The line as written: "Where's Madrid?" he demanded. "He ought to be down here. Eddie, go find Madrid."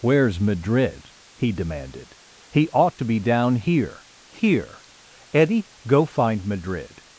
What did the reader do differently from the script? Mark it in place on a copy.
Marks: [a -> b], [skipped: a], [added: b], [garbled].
"Where's Madrid?" he demanded. "He ought to be down here. [added: here] Eddie, go find Madrid."